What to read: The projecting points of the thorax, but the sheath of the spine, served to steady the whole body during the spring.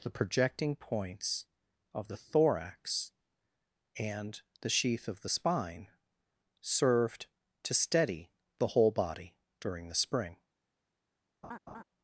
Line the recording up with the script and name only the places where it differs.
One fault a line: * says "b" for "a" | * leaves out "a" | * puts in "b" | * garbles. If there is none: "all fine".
* says "and" for "but"